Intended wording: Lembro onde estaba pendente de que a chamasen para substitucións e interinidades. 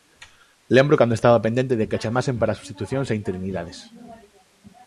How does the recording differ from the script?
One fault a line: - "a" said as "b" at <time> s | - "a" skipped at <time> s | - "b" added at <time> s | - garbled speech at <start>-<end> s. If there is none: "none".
- "onde" said as "cando" at 1.0 s